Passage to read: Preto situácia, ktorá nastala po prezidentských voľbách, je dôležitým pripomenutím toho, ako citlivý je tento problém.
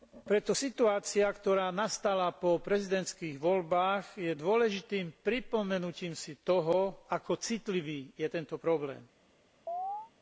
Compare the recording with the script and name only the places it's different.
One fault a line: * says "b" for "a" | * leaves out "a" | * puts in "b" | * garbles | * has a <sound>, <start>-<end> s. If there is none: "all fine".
* puts in "si"
* has a chirp, 9.7-10.1 s